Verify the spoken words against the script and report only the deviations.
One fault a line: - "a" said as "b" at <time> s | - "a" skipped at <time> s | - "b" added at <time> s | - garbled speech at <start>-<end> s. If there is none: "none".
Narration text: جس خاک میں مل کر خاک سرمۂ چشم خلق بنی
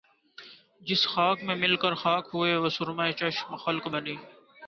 - "ہوئے وہ" added at 2.3 s